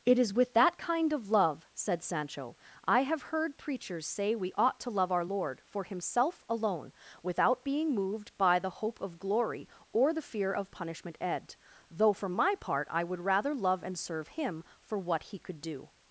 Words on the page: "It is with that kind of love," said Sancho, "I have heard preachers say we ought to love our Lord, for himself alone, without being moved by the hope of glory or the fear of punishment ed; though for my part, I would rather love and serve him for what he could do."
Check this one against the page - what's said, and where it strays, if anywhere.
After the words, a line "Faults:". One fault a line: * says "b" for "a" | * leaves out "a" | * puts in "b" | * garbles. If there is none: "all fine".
"It is with that kind of love," said Sancho, "I have heard preachers say we ought to love our Lord, for himself alone, without being moved by the hope of glory or the fear of punishment ed; though for my part, I would rather love and serve him for what he could do."
Faults:
all fine